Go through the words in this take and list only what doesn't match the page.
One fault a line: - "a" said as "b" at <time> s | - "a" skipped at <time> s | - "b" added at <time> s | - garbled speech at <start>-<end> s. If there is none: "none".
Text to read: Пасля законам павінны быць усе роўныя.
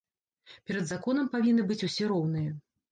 - "Пасля" said as "Перад" at 0.7 s